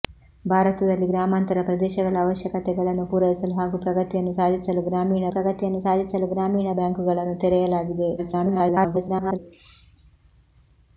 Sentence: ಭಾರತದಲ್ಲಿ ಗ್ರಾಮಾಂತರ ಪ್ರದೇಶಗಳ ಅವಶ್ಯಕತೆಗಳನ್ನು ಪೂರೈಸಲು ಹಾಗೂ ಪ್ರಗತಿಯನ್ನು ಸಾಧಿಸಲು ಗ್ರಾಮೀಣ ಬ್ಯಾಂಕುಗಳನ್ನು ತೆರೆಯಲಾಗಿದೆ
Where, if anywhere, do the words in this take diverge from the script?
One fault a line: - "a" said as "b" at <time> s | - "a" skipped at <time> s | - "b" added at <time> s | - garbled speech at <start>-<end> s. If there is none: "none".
- "ಪ್ರಗತಿಯನ್ನು ಸಾಧಿಸಲು ಗ್ರಾಮೀಣ" added at 5.3 s
- garbled speech at 8.2-9.4 s